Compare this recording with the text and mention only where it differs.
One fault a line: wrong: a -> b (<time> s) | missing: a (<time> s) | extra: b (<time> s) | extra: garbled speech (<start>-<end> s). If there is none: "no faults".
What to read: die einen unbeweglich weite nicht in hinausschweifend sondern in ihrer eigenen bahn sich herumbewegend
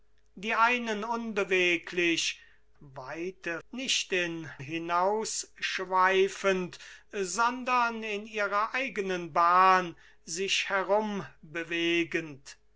no faults